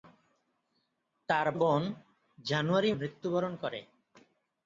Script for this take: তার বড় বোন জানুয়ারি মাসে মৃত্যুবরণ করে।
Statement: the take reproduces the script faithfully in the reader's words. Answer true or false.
false